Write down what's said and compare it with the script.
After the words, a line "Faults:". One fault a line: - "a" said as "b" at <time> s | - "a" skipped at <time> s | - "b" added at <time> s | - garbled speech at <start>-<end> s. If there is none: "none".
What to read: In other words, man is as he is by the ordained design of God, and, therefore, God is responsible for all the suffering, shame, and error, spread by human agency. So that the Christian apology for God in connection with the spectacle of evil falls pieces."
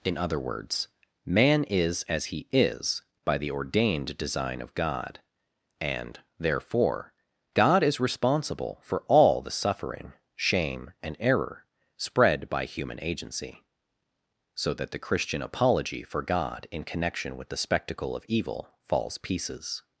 In other words, man is as he is by the ordained design of God, and, therefore, God is responsible for all the suffering, shame, and error, spread by human agency. So that the Christian apology for God in connection with the spectacle of evil falls pieces."
Faults:
none